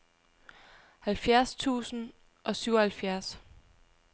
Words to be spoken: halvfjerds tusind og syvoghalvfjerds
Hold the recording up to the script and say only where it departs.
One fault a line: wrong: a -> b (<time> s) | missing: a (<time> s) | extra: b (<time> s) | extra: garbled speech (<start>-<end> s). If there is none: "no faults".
no faults